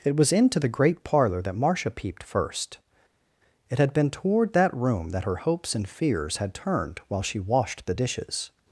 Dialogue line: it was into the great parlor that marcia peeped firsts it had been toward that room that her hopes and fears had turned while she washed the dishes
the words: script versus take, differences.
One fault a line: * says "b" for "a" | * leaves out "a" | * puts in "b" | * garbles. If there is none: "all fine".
* says "first" for "firsts"